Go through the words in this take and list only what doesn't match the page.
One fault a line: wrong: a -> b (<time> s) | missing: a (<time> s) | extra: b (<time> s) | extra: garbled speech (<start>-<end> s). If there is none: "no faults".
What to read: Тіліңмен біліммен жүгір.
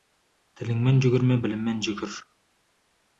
extra: жүгірме (1.1 s)